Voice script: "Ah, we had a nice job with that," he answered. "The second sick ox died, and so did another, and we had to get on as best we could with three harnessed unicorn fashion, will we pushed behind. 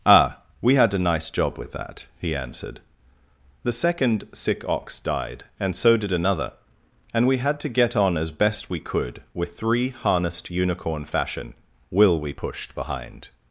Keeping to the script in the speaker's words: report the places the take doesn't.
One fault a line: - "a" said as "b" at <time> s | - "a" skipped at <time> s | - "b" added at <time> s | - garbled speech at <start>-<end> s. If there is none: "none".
none